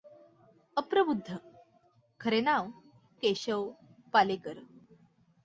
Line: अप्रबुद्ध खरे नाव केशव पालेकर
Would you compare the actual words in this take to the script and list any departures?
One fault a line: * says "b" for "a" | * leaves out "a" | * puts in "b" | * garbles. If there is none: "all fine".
all fine